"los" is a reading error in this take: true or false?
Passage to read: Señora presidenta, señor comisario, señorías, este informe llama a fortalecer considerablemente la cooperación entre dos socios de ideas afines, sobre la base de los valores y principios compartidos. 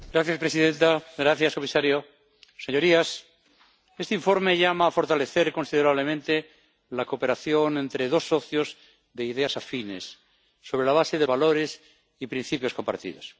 true